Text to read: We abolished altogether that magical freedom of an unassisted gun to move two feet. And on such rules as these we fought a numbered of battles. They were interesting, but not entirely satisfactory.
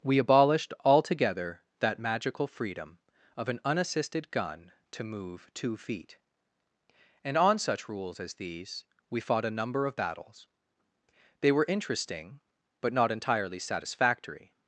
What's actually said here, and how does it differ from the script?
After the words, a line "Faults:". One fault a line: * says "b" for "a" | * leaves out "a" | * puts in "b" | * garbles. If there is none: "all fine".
We abolished altogether that magical freedom of an unassisted gun to move two feet. And on such rules as these we fought a number of battles. They were interesting, but not entirely satisfactory.
Faults:
* says "number" for "numbered"